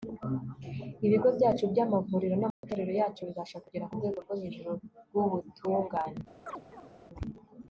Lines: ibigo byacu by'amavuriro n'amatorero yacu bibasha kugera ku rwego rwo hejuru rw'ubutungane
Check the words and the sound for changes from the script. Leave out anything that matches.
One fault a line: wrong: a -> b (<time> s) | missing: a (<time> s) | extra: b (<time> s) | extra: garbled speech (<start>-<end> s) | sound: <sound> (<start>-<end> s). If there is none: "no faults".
sound: dropout (2.5-2.6 s)
sound: chirp (6.5-6.9 s)